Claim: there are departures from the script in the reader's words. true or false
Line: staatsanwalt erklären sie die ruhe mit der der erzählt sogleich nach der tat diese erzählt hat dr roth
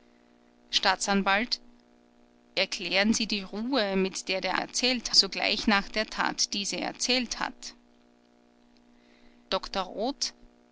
false